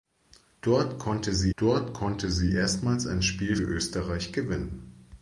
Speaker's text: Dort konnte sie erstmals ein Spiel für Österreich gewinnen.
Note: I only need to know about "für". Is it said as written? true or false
false